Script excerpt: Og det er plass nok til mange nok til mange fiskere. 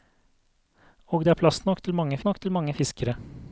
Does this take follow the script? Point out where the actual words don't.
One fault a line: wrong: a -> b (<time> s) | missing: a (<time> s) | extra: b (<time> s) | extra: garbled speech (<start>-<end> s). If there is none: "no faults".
no faults